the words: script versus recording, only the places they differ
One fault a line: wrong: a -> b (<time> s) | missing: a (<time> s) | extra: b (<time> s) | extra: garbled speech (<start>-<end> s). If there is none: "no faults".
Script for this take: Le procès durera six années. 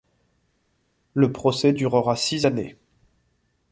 no faults